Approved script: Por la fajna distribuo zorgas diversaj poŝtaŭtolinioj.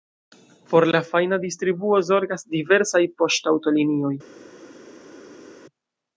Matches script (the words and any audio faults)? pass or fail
pass